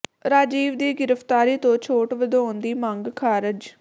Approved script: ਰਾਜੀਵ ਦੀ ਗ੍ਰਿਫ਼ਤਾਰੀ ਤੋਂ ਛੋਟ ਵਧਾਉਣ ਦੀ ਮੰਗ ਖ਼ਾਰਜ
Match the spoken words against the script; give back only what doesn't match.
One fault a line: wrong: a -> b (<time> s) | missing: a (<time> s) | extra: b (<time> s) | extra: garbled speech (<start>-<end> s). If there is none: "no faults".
no faults